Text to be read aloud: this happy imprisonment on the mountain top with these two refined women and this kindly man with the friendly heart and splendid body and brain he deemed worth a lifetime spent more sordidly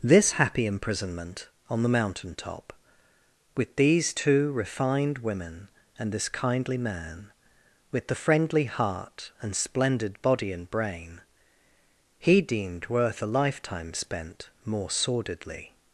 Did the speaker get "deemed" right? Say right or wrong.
right